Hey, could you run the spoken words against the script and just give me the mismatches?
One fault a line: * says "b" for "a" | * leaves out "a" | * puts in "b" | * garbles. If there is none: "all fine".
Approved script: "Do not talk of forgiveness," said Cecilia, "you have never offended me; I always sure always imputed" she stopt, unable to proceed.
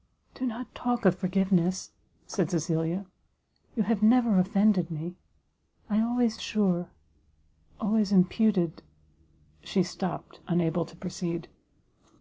all fine